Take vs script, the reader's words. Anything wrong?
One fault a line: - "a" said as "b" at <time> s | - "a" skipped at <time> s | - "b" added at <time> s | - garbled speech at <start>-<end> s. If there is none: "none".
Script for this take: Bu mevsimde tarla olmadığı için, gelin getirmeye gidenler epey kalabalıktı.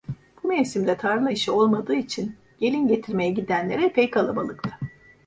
- "işi" added at 1.3 s